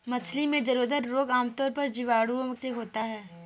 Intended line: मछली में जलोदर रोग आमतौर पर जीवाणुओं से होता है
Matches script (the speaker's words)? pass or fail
pass